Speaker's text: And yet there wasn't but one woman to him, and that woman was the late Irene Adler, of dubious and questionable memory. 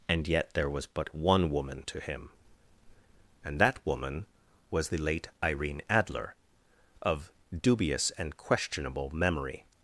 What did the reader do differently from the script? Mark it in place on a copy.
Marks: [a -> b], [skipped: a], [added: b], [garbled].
And yet there [wasn't -> was] but one woman to him, and that woman was the late Irene Adler, of dubious and questionable memory.